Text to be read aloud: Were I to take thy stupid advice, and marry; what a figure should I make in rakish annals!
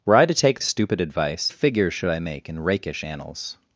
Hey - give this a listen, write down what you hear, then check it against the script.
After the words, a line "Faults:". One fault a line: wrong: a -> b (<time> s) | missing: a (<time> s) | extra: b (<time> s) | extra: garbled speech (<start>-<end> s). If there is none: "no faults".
Were I to take stupid advice, a figure should I make in rakish annals!
Faults:
missing: thy (0.6 s)
missing: and marry what (1.5 s)